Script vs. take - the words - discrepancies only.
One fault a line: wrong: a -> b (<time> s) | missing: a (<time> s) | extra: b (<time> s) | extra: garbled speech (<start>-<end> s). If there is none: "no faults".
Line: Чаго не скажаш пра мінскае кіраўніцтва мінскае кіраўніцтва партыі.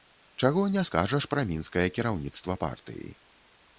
missing: мінскае кіраўніцтва (2.6 s)